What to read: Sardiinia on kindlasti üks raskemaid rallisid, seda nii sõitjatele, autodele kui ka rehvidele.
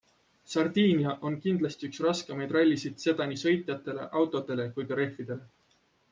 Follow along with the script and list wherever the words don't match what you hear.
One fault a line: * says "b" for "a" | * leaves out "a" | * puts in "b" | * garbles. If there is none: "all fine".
all fine